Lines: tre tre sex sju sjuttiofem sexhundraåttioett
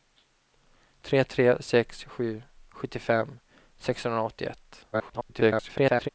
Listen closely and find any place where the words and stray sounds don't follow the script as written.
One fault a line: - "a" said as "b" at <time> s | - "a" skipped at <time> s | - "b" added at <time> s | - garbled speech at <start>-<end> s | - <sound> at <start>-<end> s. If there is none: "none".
- garbled speech at 4.9-6.1 s